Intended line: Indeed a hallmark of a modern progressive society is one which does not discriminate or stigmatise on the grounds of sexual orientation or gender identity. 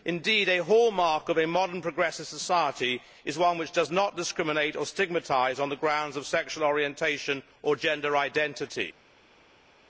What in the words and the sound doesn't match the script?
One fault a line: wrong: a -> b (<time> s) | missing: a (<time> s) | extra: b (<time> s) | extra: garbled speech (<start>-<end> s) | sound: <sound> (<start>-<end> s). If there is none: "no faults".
no faults